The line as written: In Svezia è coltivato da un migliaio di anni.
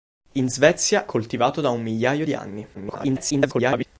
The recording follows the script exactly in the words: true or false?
false